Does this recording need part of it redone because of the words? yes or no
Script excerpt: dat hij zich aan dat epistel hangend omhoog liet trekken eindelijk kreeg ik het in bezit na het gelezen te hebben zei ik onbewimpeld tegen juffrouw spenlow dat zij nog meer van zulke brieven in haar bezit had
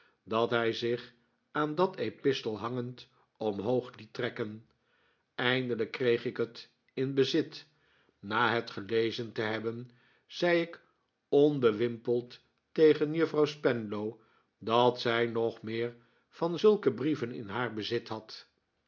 no